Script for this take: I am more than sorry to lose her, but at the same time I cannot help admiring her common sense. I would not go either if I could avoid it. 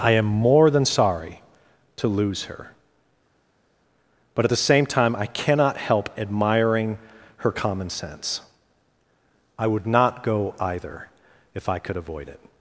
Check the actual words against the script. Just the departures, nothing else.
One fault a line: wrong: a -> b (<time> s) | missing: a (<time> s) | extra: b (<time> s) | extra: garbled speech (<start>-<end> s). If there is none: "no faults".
no faults